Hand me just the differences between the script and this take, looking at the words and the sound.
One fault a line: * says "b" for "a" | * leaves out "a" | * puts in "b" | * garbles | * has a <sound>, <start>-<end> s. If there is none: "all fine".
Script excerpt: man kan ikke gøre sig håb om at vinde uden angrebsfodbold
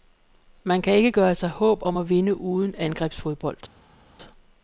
all fine